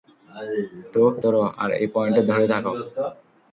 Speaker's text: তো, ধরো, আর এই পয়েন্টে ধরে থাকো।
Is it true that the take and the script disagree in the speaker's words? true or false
false